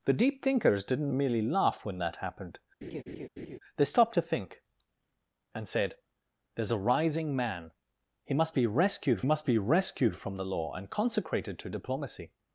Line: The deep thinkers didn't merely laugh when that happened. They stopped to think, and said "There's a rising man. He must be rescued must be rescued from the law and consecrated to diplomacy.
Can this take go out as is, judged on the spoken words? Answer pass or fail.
pass